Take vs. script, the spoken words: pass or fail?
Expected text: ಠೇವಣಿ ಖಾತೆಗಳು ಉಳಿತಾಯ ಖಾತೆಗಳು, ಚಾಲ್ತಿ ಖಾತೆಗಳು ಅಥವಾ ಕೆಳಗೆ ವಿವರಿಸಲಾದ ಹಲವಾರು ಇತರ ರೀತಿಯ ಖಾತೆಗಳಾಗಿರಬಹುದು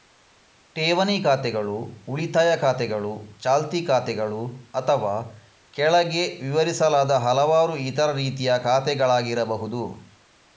pass